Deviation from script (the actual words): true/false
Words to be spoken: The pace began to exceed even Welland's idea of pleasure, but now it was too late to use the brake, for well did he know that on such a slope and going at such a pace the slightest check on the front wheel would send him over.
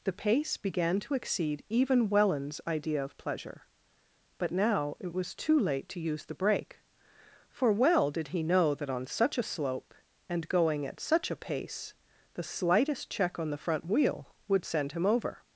false